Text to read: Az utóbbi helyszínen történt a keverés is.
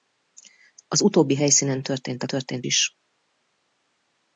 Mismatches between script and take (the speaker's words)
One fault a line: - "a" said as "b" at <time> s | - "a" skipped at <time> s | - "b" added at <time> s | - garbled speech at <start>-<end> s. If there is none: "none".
- "keverés" said as "történt" at 2.3 s